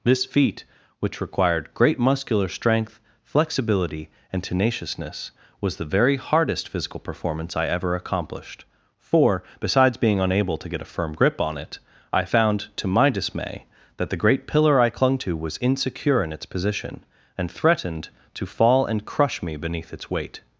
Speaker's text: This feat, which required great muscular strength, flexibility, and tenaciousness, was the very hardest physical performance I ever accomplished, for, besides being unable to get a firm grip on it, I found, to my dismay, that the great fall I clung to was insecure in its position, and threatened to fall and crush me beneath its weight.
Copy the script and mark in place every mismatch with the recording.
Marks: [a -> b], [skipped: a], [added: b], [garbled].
This feat, which required great muscular strength, flexibility, and tenaciousness, was the very hardest physical performance I ever accomplished, for, besides being unable to get a firm grip on it, I found, to my dismay, that the great [fall -> pillar] I clung to was insecure in its position, and threatened to fall and crush me beneath its weight.